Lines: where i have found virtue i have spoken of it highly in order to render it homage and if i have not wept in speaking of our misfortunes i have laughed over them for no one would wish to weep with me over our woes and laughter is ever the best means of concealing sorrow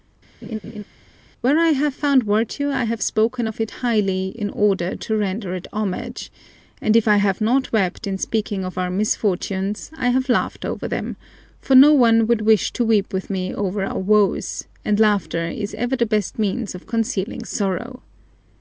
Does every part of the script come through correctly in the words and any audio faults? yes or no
no